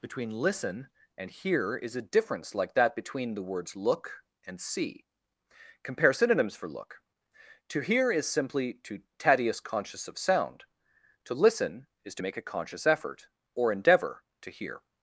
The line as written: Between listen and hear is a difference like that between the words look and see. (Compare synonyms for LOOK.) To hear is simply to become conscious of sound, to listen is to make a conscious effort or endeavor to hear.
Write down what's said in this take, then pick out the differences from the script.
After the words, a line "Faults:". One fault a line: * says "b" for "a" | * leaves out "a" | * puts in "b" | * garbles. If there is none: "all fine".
Between listen and hear is a difference like that between the words look and see. (Compare synonyms for LOOK.) To hear is simply to tadius conscious of sound, to listen is to make a conscious effort or endeavor to hear.
Faults:
* says "tadius" for "become"